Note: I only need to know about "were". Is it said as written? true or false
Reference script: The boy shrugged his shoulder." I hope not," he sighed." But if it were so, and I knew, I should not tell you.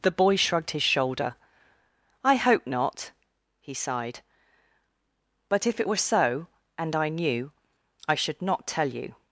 true